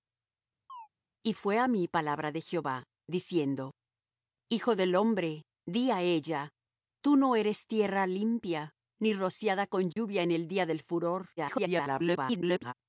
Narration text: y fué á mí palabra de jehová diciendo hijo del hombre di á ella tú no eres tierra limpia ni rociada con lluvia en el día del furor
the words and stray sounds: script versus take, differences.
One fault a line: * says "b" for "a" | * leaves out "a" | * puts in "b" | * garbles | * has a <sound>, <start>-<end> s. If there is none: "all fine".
* has a chirp, 0.7-0.9 s
* has a dropout, 9.9-10.0 s
* garbles